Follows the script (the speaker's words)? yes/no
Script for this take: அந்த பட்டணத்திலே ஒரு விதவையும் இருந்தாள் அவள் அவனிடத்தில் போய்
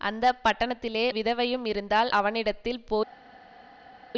no